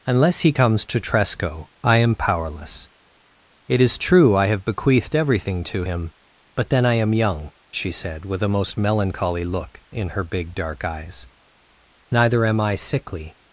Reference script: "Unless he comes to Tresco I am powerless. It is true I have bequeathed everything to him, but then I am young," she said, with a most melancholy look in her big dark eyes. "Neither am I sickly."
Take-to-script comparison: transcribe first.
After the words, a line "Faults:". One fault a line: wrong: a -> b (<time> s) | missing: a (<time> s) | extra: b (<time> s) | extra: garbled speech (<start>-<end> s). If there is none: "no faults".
"Unless he comes to Tresco I am powerless. It is true I have bequeathed everything to him, but then I am young," she said, with a most melancholy look in her big dark eyes. "Neither am I sickly."
Faults:
no faults